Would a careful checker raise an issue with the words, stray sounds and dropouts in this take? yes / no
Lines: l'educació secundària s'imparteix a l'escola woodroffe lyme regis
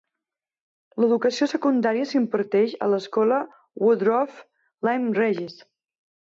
no